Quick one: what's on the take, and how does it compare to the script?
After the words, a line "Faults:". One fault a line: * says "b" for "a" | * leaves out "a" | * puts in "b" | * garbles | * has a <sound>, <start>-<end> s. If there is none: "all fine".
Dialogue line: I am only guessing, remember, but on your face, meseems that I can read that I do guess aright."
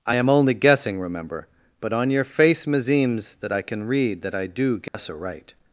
I am only guessing, remember, but on your face, meseems that I can read that I do guess aright."
Faults:
* has a dropout, 4.9-4.9 s